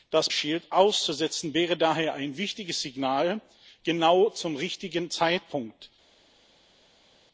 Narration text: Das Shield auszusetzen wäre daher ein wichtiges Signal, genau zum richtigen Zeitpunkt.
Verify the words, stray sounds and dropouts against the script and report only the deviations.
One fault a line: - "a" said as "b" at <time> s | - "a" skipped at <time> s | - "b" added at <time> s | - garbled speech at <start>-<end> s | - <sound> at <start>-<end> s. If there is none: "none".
none